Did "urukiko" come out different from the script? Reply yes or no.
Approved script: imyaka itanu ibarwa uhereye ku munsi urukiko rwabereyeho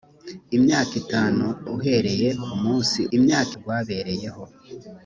yes